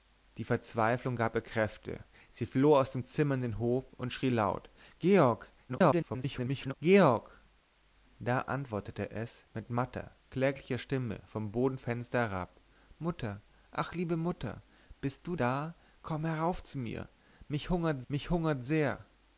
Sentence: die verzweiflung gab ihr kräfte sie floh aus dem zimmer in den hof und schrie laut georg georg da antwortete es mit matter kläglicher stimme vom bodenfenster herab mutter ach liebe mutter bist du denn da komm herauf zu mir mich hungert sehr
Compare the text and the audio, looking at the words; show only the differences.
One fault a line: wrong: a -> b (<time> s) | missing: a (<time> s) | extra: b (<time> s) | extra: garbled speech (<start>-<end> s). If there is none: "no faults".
extra: garbled speech (5.7-6.7 s)
missing: denn (15.4 s)
extra: mich hungert (18.1 s)